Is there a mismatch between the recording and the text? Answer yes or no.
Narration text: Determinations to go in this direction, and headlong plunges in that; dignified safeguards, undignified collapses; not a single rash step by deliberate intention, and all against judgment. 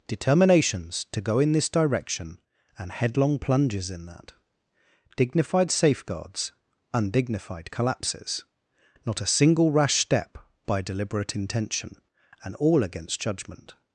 no